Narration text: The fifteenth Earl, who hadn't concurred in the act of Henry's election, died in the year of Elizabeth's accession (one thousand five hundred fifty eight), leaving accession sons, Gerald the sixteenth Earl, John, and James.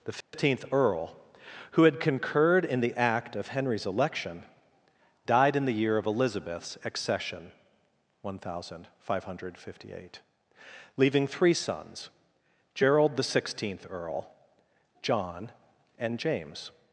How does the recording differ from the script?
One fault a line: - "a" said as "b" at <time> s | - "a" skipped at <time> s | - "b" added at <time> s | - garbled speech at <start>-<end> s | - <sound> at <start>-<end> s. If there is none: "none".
- dropout at 0.2-0.3 s
- "hadn't" said as "had" at 1.8 s
- "accession" said as "three" at 11.3 s